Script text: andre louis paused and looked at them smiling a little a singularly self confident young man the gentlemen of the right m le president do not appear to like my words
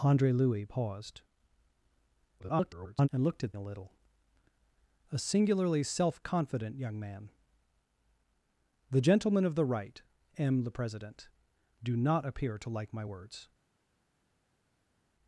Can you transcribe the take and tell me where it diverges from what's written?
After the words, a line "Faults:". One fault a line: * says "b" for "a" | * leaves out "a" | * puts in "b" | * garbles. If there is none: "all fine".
andre louis paused [garbled] and looked at a little a singularly self confident young man the gentlemen of the right m le president do not appear to like my words
Faults:
* garbles
* leaves out "them smiling"